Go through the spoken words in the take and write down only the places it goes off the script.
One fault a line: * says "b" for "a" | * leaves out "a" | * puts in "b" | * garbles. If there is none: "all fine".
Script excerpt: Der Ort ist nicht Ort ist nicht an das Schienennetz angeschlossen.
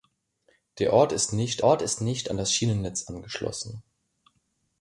all fine